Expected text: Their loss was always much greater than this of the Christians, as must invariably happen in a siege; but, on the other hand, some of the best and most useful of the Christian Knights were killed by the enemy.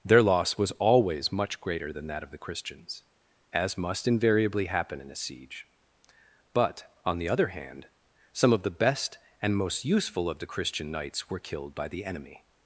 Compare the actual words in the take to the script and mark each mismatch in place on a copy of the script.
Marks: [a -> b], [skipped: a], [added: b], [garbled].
Their loss was always much greater than [this -> that] of the Christians, as must invariably happen in a siege; but, on the other hand, some of the best and most useful of the Christian Knights were killed by the enemy.